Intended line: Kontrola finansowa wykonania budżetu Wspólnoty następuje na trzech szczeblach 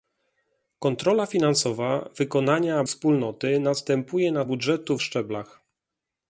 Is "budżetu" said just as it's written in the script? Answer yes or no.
no